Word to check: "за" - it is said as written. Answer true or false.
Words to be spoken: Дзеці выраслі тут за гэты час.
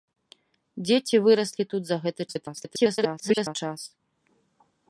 true